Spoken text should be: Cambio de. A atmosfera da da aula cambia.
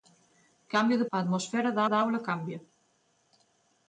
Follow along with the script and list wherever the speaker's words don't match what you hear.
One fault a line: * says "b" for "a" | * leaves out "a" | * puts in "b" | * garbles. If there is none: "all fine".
all fine